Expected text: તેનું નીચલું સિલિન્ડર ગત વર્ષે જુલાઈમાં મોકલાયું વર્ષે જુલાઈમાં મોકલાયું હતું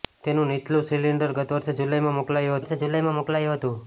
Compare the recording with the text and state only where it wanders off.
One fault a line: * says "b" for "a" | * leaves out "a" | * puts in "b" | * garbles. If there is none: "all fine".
all fine